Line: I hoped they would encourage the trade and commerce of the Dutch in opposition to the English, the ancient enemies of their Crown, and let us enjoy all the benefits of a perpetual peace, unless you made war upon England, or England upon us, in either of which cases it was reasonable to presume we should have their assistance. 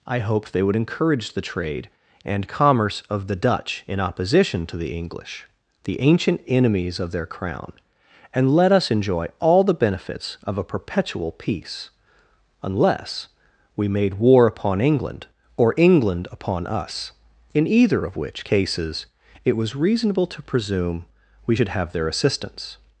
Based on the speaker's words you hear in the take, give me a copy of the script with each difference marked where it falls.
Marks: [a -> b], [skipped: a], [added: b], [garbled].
I hoped they would encourage the trade and commerce of the Dutch in opposition to the English, the ancient enemies of their Crown, and let us enjoy all the benefits of a perpetual peace, unless [you -> we] made war upon England, or England upon us, in either of which cases it was reasonable to presume we should have their assistance.